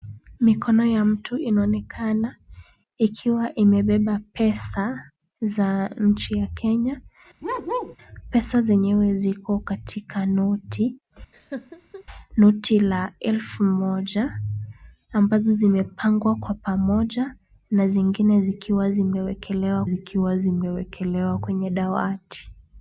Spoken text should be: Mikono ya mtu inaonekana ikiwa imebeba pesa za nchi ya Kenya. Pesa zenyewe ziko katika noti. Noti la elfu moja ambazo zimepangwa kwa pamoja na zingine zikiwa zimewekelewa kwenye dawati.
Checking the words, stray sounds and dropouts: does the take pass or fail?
fail